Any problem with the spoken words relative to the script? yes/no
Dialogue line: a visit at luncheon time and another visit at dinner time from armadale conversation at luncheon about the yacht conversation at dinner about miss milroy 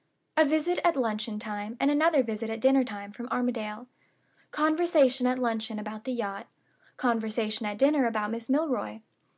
no